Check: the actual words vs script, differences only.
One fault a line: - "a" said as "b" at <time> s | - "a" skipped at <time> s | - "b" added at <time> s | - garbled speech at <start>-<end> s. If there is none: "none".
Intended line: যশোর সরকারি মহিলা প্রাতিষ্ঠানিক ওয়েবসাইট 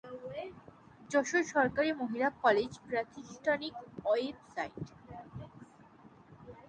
- "কলেজ" added at 2.4 s